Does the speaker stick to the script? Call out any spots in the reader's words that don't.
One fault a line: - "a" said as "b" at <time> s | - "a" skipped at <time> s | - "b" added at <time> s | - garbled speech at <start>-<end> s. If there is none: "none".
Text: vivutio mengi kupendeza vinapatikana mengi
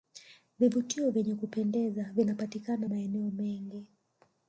- "mengi" said as "vyenye" at 1.1 s
- "maeneo" added at 2.9 s